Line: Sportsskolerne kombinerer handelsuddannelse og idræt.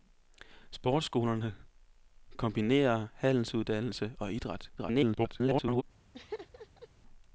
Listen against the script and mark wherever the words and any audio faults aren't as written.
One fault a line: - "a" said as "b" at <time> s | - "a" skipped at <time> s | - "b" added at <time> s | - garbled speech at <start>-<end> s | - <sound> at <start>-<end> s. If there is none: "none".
- garbled speech at 4.8-5.8 s
- laugh at 6.1-6.9 s